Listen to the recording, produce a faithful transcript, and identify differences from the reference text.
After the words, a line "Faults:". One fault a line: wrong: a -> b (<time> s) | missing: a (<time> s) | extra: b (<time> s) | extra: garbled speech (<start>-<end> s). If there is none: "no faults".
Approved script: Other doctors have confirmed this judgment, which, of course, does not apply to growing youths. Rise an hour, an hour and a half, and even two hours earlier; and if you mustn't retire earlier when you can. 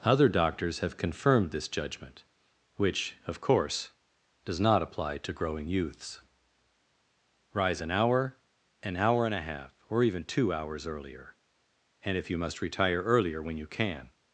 Other doctors have confirmed this judgment, which, of course, does not apply to growing youths. Rise an hour, an hour and a half, or even two hours earlier; and if you must retire earlier when you can.
Faults:
wrong: and -> or (9.9 s)
wrong: mustn't -> must (12.4 s)